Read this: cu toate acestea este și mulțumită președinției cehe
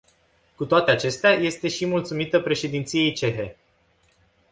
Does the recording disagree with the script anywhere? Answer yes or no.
no